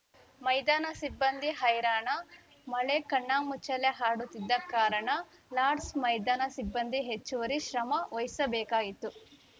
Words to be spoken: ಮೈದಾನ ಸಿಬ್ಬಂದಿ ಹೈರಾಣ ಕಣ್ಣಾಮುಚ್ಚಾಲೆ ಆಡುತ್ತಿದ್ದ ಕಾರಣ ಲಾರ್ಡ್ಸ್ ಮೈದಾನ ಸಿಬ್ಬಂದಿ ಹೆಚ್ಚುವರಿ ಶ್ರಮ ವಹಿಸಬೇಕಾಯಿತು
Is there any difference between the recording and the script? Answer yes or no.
yes